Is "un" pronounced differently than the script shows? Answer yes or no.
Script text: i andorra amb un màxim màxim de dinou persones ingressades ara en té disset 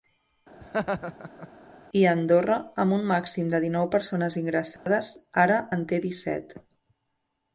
no